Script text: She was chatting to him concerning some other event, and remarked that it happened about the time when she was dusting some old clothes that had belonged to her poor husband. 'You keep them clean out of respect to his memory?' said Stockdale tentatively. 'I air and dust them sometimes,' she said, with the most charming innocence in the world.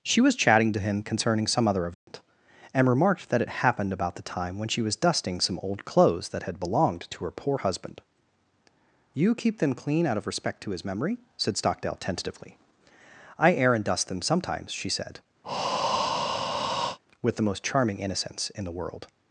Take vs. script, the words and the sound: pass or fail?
fail